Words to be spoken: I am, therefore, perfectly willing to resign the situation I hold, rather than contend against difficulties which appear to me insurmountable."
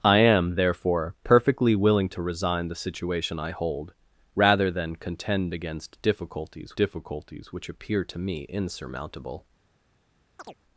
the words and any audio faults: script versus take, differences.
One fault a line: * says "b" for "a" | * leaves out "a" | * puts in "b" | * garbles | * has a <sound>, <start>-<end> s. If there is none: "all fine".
* puts in "difficulties"
* has a chirp, 10.4-10.6 s